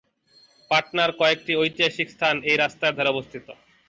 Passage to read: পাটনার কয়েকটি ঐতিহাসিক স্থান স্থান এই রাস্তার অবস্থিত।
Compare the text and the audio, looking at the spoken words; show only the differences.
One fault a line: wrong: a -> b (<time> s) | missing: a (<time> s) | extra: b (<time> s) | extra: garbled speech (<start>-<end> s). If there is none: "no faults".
missing: স্থান (2.4 s)
extra: ধারে (3.0 s)